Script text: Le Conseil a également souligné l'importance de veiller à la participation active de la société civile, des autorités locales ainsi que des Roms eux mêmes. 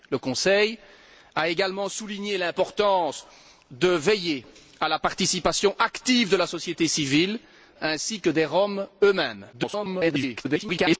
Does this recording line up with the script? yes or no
no